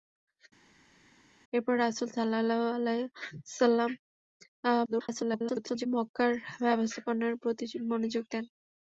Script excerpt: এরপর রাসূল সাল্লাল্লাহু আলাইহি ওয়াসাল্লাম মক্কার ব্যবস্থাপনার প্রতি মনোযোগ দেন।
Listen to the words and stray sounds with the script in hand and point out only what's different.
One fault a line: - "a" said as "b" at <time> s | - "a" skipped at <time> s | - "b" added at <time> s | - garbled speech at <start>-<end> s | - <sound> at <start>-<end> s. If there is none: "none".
- garbled speech at 4.9-5.9 s